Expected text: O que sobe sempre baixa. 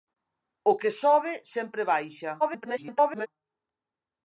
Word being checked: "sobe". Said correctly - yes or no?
yes